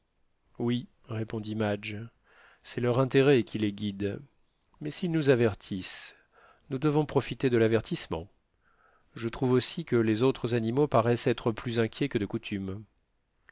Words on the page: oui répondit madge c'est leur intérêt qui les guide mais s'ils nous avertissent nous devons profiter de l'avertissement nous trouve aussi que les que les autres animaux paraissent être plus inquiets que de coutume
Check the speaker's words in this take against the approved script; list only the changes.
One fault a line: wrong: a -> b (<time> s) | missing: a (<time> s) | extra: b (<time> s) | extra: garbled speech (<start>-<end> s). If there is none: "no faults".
wrong: nous -> je (9.1 s)
missing: que les (10.2 s)